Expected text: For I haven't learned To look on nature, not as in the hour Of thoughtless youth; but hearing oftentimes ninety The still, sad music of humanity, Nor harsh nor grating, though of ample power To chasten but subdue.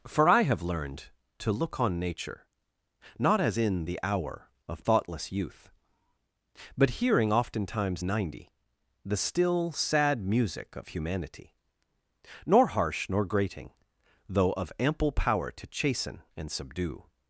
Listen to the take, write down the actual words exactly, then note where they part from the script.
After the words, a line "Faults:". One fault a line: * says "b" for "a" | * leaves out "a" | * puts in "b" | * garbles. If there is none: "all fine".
For I have learned To look on nature, not as in the hour Of thoughtless youth; but hearing oftentimes ninety The still, sad music of humanity, Nor harsh nor grating, though of ample power To chasten and subdue.
Faults:
* says "have" for "haven't"
* says "and" for "but"